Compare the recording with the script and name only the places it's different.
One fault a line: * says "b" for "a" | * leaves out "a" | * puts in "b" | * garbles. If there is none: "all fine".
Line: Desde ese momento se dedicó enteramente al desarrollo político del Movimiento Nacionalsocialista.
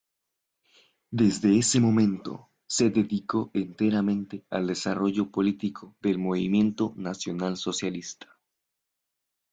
all fine